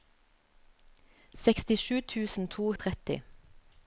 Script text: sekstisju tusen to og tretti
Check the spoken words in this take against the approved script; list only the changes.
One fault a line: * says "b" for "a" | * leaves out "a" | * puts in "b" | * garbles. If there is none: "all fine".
all fine